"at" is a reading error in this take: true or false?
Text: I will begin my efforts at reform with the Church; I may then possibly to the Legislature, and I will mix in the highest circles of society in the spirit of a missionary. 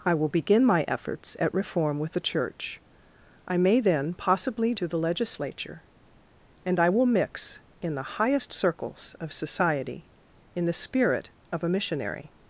false